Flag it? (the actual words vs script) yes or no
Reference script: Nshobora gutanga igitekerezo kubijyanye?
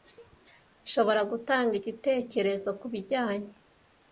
no